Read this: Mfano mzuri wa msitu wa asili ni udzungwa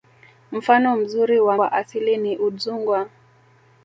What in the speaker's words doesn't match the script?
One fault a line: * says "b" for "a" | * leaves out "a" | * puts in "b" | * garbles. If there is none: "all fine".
* leaves out "msitu"